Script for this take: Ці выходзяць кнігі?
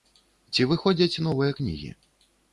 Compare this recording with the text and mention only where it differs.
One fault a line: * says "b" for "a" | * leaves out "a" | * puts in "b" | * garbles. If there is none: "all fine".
* puts in "новыя"